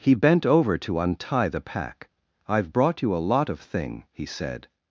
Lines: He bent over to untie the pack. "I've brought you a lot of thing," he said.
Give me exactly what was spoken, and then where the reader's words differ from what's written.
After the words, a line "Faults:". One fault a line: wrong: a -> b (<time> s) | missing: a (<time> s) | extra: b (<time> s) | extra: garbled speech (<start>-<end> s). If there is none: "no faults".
He bent over to untie the pack. "I've brought you a lot of thing," he said.
Faults:
no faults